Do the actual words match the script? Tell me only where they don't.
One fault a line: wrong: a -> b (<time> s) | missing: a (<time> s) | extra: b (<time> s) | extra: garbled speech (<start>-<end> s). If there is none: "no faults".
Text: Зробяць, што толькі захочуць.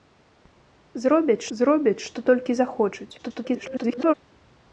extra: зробяць (1.6 s)
extra: garbled speech (3.2-4.1 s)